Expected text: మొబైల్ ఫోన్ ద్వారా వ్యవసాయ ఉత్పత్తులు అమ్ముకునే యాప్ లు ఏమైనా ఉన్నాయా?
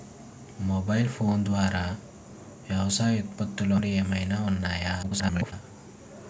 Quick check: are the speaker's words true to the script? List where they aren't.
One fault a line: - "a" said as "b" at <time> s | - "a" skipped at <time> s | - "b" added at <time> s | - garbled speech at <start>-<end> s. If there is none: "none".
- "అమ్ముకునే యాప్" skipped at 3.8 s
- garbled speech at 5.0-5.5 s